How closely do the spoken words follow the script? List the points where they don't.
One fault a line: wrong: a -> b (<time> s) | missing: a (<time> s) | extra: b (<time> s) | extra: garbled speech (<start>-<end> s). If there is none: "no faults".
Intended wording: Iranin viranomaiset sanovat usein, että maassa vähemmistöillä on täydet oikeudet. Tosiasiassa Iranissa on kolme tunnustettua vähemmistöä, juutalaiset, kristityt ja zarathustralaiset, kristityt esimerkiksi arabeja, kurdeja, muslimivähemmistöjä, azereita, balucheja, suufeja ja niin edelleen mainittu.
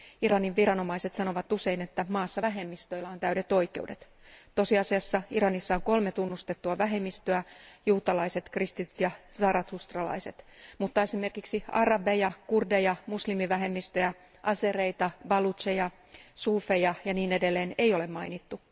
wrong: kristityt -> mutta (10.8 s)
extra: ei ole (17.8 s)